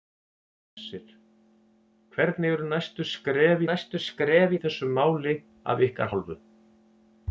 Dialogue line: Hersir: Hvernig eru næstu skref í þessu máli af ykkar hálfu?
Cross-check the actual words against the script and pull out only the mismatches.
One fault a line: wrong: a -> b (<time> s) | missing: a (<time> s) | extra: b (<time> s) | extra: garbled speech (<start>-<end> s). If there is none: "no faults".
extra: næstu skref (3.7 s)